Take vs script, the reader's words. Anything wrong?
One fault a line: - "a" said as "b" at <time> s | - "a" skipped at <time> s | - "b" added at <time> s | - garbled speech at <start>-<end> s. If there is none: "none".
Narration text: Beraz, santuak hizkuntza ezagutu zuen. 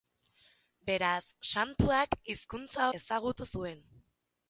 none